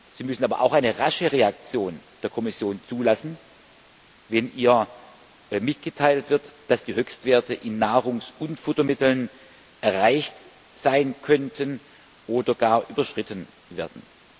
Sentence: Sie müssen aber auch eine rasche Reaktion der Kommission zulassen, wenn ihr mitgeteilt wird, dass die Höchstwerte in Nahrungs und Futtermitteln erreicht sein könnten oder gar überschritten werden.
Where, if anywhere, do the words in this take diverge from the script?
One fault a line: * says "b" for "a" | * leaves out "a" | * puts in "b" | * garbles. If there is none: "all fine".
all fine